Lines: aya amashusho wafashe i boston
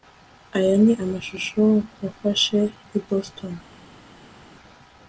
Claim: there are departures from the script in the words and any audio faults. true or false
true